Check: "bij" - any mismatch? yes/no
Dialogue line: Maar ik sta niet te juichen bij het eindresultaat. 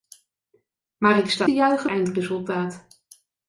yes